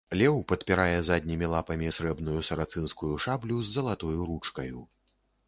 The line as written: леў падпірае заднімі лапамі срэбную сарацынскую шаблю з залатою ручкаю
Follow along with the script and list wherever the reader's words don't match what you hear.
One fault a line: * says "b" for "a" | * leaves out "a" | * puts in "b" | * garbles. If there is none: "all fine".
all fine